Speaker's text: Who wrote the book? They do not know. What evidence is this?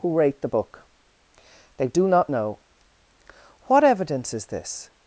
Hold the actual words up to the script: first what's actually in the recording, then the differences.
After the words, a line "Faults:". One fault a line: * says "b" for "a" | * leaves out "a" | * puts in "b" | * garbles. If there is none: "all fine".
Who rate the book? They do not know. What evidence is this?
Faults:
* says "rate" for "wrote"